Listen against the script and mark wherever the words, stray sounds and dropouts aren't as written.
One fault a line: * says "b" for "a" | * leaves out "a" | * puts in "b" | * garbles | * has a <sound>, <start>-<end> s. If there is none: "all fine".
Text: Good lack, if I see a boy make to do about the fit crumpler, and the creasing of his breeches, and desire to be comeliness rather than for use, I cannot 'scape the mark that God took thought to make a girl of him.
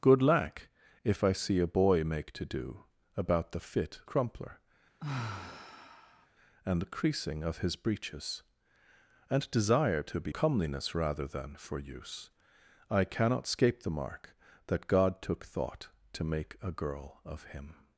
* has a sigh, 5.0-6.3 s